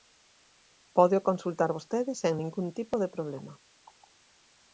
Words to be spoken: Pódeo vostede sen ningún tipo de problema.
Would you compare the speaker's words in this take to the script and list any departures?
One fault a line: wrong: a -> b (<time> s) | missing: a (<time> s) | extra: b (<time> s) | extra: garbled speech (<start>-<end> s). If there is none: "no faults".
extra: consultar (1.3 s)